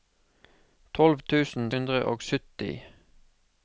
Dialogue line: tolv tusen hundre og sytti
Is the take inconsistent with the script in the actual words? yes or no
no